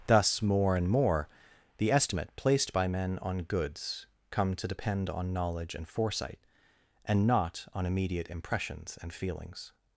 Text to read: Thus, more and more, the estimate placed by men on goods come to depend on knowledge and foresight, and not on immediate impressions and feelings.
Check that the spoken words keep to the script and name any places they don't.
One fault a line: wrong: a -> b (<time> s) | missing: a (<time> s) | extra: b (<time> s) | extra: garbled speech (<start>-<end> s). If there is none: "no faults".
no faults